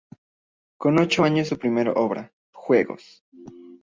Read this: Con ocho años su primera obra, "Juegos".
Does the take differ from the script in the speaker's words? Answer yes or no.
no